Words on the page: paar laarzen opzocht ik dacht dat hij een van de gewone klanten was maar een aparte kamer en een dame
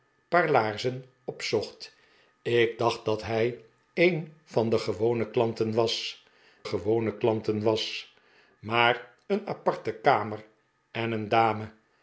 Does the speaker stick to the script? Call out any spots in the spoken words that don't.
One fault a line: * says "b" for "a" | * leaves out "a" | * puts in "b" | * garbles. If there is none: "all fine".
* puts in "gewone klanten was"